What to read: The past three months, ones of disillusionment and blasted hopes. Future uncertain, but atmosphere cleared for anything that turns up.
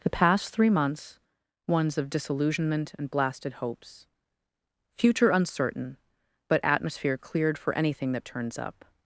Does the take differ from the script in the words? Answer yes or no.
no